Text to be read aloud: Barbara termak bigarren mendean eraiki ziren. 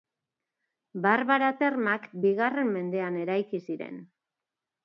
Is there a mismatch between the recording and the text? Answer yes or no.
no